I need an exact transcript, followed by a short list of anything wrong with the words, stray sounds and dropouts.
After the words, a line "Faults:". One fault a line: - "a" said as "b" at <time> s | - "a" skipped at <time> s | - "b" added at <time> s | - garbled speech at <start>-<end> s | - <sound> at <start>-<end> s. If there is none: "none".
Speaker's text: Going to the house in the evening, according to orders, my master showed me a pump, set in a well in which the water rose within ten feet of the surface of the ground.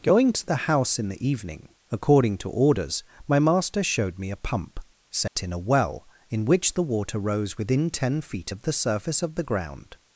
Going to the house in the evening, according to orders, my master showed me a pump, set in a well in which the water rose within ten feet of the surface of the ground.
Faults:
- dropout at 5.3-5.4 s